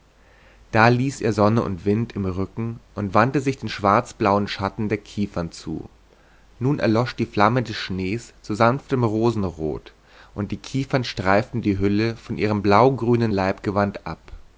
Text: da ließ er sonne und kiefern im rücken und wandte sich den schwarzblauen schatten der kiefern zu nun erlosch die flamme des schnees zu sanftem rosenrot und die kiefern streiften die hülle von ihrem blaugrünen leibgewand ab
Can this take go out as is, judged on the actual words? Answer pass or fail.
fail